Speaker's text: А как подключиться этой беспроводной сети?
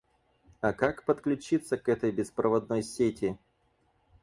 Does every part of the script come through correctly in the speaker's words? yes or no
no